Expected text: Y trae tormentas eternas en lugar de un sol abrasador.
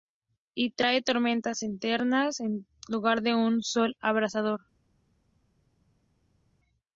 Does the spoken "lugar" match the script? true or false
true